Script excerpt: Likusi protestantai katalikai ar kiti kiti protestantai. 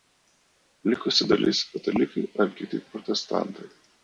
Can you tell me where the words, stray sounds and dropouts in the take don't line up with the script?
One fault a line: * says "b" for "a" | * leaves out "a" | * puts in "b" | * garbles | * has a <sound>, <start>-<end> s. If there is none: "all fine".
* says "dalis" for "protestantai"
* leaves out "kiti"